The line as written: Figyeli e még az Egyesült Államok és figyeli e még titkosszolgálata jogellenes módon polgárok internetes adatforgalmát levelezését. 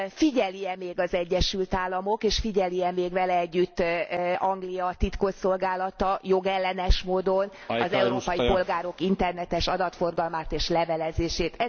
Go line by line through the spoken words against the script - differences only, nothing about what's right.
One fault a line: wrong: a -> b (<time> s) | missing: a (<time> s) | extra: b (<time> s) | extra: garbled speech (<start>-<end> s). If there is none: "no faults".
extra: vele együtt Anglia (3.1 s)
extra: az európai (7.7 s)
extra: és (10.5 s)